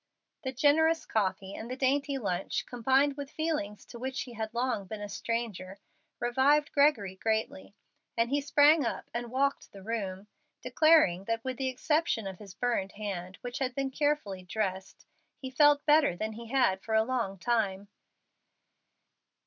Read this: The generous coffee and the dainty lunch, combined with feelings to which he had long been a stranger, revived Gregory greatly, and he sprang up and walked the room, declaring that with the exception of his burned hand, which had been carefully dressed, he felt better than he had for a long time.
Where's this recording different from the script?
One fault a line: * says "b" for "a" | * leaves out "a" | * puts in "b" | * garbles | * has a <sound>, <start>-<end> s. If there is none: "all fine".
all fine